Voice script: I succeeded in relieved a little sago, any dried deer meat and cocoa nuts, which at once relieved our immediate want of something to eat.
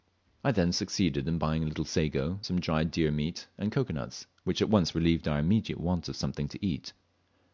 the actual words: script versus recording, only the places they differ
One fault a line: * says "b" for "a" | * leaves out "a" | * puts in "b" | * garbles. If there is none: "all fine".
* puts in "then"
* says "buying" for "relieved"
* says "some" for "any"